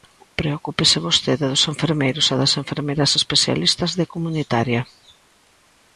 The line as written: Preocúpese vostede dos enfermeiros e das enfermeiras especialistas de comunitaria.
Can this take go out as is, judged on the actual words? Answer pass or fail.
pass